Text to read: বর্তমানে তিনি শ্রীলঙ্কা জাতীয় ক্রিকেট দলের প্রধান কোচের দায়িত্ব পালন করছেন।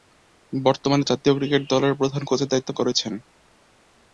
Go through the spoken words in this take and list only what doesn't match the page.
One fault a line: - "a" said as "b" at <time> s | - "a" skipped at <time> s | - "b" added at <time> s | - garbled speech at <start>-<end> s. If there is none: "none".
- "তিনি শ্রীলঙ্কা" skipped at 1.0 s
- "পালন" skipped at 2.7 s